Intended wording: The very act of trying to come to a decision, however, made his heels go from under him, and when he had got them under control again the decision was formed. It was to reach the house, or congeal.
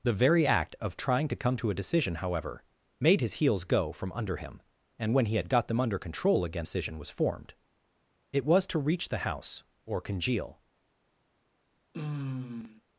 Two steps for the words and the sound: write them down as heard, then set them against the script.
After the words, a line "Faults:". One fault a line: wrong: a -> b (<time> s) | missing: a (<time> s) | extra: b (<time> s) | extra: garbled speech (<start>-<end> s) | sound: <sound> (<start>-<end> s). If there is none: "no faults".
The very act of trying to come to a decision, however, made his heels go from under him, and when he had got them under control again decision was formed. It was to reach the house, or congeal.
Faults:
missing: the (6.7 s)
sound: sigh (11.9-12.8 s)